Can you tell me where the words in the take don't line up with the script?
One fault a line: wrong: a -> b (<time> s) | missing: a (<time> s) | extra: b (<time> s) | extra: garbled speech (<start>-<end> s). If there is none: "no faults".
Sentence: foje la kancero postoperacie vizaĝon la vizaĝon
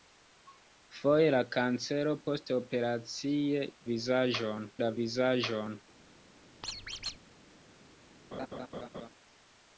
no faults